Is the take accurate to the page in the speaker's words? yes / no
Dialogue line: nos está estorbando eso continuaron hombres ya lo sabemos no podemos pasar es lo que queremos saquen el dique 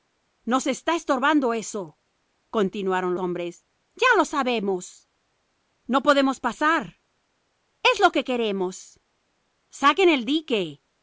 yes